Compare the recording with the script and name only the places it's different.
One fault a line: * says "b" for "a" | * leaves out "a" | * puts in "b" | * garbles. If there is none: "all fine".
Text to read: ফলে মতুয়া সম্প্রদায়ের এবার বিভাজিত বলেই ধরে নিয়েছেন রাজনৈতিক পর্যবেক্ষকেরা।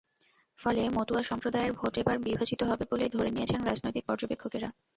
* puts in "ভোট"
* puts in "হবে"